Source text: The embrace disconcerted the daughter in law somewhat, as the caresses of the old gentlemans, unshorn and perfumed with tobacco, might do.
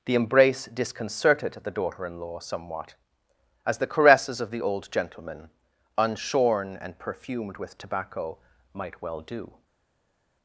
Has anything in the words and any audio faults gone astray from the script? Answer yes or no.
yes